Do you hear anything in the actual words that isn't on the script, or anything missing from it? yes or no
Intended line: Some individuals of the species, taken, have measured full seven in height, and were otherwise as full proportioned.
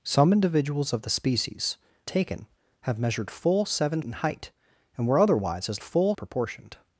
no